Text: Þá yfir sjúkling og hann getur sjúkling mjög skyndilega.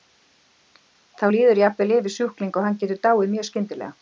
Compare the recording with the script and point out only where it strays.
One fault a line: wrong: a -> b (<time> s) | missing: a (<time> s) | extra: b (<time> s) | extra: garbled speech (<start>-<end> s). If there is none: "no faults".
extra: líður jafnvel (1.3 s)
wrong: sjúkling -> dáið (3.1 s)